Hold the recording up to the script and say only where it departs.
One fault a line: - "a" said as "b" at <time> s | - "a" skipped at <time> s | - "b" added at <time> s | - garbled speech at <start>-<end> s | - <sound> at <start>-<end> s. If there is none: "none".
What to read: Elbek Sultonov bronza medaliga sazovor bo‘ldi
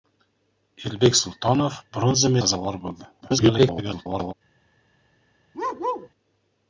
- "medaliga" skipped at 2.4 s
- garbled speech at 3.2-4.3 s
- bark at 5.5-6.1 s